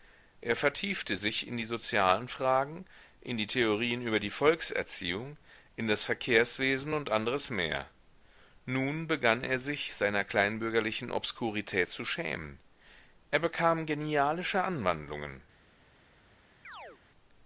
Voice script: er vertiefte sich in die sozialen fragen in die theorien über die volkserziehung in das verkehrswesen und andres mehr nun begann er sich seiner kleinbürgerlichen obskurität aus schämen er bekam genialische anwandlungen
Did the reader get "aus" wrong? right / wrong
wrong